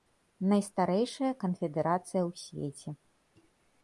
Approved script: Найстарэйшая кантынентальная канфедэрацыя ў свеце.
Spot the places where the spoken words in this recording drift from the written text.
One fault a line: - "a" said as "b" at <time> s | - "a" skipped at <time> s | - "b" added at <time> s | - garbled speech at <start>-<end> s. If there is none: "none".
- "кантынентальная" skipped at 1.3 s